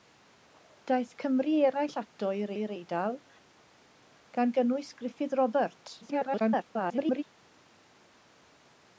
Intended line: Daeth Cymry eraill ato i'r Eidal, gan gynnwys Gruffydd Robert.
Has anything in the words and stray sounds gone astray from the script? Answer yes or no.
yes